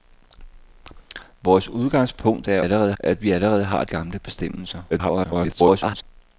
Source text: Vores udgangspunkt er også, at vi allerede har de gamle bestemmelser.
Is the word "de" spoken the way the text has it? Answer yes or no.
no